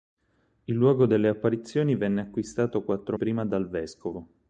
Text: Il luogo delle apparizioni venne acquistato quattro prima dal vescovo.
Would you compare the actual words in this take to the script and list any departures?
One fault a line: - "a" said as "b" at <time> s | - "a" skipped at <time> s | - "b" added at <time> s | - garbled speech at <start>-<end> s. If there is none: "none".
none